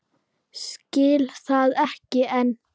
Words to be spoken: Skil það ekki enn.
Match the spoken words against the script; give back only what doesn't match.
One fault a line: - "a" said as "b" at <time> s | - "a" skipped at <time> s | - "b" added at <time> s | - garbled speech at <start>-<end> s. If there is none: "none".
none